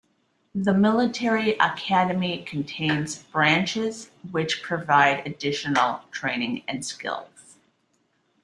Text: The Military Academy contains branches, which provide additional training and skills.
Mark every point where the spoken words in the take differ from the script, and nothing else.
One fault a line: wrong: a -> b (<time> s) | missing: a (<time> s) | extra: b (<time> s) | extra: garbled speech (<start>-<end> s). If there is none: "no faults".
no faults